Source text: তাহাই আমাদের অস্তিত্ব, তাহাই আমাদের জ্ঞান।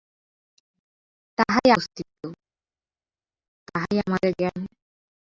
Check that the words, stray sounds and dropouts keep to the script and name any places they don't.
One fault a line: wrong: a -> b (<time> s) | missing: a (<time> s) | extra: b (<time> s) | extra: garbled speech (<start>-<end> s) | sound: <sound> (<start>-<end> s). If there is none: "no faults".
missing: আমাদের (1.7 s)